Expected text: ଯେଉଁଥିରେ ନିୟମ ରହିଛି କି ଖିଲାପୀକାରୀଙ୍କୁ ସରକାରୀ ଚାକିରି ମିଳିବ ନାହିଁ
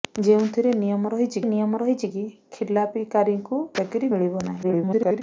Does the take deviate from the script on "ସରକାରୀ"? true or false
true